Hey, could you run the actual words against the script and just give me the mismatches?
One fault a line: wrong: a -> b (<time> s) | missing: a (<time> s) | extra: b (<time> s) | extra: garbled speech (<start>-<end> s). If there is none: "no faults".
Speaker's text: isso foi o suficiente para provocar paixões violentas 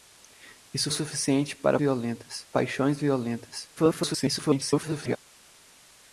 missing: foi (0.9 s)
wrong: provocar -> violentas (1.8 s)
extra: garbled speech (3.8-5.2 s)